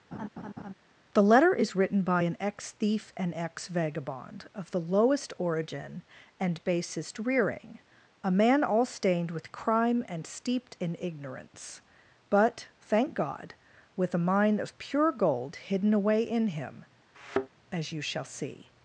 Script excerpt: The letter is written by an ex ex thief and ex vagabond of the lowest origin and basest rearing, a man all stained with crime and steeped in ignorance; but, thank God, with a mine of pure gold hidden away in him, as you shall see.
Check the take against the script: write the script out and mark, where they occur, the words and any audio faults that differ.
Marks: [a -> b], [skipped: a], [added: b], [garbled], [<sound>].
[laugh] The letter is written by an ex [skipped: ex] thief and ex vagabond of the lowest origin and basest rearing, a man all stained with crime and steeped in ignorance; but, thank God, with a mine of pure gold hidden away in him, [thud] as you shall see.